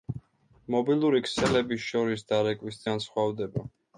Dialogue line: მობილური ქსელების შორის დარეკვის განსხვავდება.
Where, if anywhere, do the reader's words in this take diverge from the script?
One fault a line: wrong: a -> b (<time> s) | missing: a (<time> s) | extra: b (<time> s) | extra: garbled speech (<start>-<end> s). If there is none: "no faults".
no faults